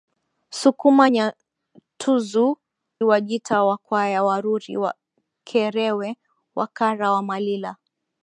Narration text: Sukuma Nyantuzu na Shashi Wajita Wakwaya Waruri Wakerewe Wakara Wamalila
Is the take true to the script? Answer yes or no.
no